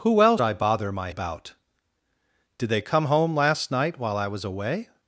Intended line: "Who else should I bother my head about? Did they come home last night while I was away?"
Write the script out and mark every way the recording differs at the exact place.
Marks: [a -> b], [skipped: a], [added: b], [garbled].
"Who else [skipped: should] I bother my [skipped: head] about? Did they come home last night while I was away?"